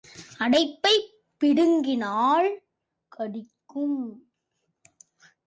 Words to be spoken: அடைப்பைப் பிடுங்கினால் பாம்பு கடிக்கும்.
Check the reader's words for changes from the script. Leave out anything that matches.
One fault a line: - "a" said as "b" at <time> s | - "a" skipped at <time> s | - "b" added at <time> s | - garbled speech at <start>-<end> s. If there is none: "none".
- "பாம்பு" skipped at 2.6 s